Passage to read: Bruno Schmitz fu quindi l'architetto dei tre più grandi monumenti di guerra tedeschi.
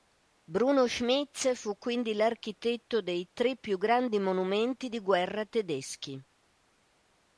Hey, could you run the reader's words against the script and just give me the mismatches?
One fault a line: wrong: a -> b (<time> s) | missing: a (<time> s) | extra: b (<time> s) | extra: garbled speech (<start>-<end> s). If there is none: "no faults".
no faults